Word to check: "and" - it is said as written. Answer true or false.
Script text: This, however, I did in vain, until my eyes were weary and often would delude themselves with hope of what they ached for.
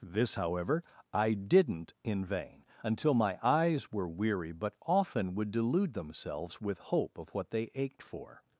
false